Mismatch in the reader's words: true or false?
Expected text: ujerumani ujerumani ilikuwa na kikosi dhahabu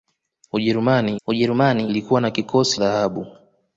false